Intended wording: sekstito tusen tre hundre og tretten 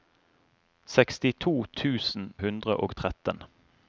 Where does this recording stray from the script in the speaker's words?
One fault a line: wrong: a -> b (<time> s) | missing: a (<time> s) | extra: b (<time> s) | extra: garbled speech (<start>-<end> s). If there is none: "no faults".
missing: tre (2.2 s)